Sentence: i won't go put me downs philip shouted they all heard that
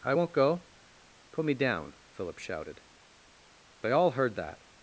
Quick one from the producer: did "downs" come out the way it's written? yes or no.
no